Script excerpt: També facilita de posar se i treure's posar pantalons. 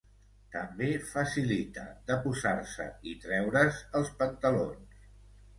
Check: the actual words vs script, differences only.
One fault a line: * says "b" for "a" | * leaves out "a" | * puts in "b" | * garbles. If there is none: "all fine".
* says "els" for "posar"